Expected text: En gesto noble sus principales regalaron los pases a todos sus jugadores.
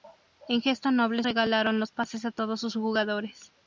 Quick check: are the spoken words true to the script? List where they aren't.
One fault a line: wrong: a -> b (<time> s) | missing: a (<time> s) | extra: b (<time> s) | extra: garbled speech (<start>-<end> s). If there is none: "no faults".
missing: sus principales (1.2 s)